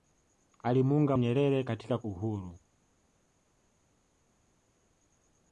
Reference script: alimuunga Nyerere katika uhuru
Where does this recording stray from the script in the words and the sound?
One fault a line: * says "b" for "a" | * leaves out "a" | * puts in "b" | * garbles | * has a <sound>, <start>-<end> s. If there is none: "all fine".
all fine